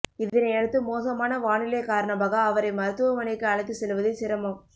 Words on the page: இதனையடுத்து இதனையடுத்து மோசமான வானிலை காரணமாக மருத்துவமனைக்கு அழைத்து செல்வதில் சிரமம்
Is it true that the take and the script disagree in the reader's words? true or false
true